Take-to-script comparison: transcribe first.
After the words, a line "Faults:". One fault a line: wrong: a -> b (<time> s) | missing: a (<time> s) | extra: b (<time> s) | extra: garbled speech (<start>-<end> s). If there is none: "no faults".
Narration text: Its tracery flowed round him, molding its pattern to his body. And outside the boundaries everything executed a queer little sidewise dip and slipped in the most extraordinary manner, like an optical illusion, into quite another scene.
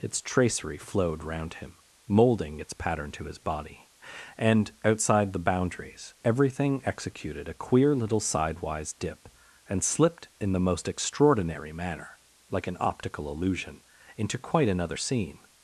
Its tracery flowed round him, molding its pattern to his body. And outside the boundaries everything executed a queer little sidewise dip and slipped in the most extraordinary manner, like an optical illusion, into quite another scene.
Faults:
no faults